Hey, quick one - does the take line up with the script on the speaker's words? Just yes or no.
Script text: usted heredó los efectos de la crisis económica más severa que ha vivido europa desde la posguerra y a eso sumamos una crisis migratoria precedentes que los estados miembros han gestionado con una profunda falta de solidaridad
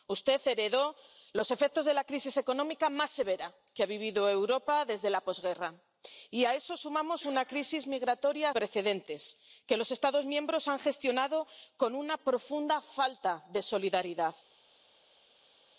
yes